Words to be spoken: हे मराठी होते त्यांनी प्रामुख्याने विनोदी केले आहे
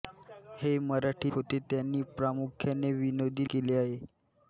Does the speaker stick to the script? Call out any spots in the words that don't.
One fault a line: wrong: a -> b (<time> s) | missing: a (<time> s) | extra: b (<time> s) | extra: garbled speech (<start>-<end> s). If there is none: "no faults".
no faults